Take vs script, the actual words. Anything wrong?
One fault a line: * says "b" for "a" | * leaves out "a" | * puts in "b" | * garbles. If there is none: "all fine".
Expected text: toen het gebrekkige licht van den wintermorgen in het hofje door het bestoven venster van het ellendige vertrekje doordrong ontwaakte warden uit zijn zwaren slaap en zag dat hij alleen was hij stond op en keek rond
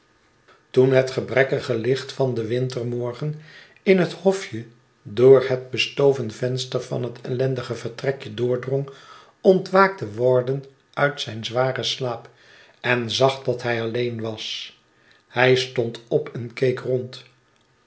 all fine